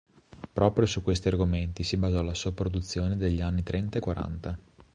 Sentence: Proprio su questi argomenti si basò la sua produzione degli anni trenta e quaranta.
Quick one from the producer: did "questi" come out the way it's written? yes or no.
yes